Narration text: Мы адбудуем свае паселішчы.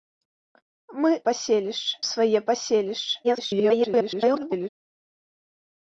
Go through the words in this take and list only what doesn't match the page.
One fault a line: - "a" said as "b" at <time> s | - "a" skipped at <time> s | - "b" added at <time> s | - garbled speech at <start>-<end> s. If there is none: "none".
- "адбудуем" said as "паселішчы" at 1.3 s
- garbled speech at 3.2-4.7 s